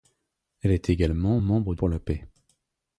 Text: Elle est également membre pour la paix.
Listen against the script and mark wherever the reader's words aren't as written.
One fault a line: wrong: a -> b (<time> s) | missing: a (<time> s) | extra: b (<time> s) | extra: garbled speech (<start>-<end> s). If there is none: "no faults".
no faults